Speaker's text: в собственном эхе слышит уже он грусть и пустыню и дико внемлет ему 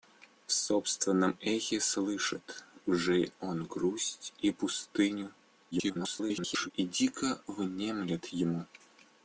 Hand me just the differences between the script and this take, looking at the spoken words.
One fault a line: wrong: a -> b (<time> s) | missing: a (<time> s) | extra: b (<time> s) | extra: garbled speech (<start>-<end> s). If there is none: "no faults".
extra: garbled speech (5.7-6.7 s)